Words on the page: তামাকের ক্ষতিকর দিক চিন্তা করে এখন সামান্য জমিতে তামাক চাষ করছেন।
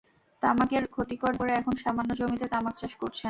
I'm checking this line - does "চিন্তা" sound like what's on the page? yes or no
no